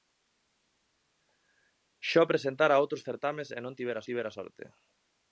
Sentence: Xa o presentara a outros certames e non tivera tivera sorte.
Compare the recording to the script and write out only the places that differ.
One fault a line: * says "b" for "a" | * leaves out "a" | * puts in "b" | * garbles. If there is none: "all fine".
all fine